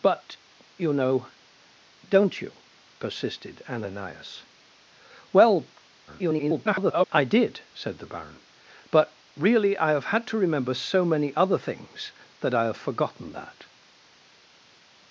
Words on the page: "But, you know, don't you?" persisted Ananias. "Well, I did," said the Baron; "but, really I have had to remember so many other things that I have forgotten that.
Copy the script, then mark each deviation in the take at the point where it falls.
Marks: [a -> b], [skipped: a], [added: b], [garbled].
"But, you know, don't you?" persisted Ananias. "Well, [garbled] I did," said the Baron; "but, really I have had to remember so many other things that I have forgotten that.